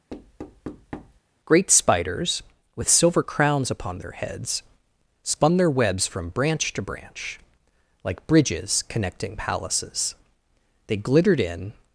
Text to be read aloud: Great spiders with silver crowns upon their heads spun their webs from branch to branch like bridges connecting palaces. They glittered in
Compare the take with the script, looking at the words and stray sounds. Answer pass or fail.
fail